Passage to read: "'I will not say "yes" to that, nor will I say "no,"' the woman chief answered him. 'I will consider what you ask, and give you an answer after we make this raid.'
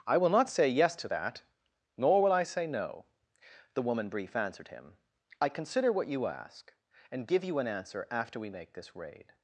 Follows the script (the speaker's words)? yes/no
no